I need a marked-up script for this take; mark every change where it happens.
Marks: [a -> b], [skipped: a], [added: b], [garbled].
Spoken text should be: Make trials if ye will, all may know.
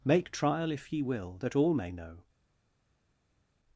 Make [trials -> trial] if ye will, [added: that] all may know.